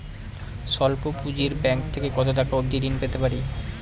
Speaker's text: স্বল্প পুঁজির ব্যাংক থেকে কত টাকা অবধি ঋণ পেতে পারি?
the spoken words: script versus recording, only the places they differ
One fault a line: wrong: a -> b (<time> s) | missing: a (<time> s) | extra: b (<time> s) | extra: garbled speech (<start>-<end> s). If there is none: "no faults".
no faults